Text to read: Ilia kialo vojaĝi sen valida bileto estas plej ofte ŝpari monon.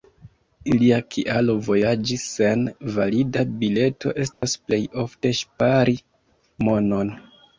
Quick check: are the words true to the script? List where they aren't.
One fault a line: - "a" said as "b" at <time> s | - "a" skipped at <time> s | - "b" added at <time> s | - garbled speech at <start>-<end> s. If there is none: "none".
none